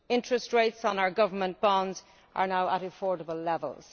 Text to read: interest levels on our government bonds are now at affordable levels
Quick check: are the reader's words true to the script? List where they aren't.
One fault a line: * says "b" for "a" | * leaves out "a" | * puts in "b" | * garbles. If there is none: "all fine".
* says "rates" for "levels"